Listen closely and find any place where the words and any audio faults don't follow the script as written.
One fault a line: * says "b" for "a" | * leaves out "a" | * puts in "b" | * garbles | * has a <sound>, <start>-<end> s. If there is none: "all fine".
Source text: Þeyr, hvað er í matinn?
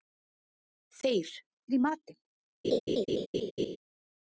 * leaves out "hvað"
* has a laugh, 2.6-3.8 s